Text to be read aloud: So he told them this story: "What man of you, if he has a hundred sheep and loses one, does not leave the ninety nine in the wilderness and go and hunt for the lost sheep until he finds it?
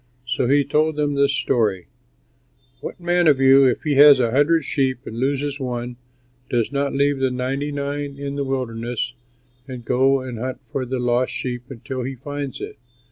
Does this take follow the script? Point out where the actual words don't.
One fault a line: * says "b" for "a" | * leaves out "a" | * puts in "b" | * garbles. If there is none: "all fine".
all fine